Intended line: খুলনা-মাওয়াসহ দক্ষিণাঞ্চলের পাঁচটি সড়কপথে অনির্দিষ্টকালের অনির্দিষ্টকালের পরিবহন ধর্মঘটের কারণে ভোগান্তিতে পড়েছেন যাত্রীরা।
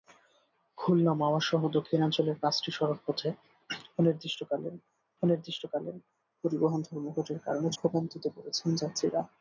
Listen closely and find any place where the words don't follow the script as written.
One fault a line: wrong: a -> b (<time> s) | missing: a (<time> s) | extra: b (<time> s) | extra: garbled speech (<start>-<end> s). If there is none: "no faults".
no faults